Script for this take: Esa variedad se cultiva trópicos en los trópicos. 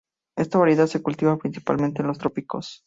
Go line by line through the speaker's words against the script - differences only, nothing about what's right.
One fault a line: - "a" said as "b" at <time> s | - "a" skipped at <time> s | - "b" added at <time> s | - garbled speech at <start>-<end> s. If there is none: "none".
- "Esa" said as "Esta" at 0.3 s
- "trópicos" said as "principalmente" at 1.4 s